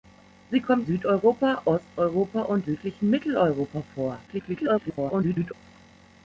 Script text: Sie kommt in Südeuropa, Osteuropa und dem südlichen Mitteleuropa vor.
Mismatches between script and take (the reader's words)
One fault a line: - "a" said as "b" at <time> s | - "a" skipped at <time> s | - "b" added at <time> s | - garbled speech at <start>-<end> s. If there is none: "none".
- "in" skipped at 0.9 s
- "dem" skipped at 2.7 s
- garbled speech at 4.3-5.5 s